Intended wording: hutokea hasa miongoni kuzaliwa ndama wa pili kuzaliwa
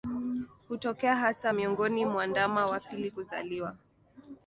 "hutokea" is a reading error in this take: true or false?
false